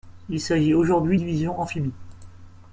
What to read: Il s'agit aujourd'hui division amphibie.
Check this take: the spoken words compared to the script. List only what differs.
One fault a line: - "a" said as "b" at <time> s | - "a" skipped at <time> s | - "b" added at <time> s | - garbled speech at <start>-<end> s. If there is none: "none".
none